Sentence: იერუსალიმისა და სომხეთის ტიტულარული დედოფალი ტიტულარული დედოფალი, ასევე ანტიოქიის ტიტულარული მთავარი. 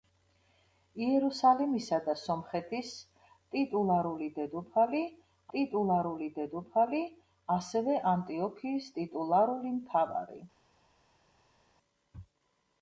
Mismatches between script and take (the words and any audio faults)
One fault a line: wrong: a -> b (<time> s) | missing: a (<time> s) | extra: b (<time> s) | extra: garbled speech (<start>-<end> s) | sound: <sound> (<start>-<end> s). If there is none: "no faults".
no faults